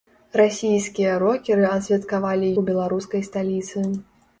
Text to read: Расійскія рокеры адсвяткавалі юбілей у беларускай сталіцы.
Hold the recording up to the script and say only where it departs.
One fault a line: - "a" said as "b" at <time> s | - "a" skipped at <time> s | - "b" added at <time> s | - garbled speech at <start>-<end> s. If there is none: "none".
- "юбілей" skipped at 2.5 s